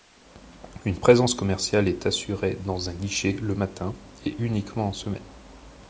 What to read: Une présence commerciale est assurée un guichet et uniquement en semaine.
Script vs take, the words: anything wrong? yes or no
yes